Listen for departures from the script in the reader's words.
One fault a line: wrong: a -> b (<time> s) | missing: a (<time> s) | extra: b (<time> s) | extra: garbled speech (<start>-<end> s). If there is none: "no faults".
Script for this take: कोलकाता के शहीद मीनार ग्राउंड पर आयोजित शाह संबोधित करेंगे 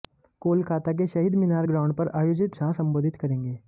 no faults